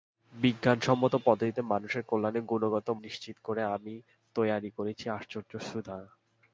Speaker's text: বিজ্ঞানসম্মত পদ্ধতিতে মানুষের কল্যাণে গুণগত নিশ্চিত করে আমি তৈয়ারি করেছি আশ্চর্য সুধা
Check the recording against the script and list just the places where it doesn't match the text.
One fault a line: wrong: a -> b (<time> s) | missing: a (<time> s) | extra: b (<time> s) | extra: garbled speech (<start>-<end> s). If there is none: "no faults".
no faults